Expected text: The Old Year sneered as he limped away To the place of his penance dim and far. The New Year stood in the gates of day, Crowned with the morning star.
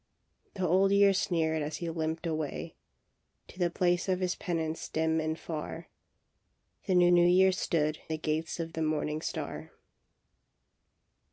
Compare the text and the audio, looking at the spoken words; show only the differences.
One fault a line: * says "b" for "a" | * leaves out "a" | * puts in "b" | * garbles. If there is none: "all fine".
* puts in "New"
* leaves out "in"
* leaves out "day Crowned with"